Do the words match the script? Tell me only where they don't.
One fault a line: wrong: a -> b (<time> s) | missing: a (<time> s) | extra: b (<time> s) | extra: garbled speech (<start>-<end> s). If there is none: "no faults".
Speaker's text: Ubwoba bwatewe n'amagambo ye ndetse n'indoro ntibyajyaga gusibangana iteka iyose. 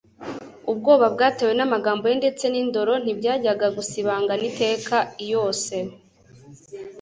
no faults